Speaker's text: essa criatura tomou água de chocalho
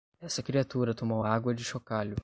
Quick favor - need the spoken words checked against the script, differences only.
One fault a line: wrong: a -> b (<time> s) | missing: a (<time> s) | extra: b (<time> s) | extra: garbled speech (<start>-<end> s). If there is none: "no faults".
no faults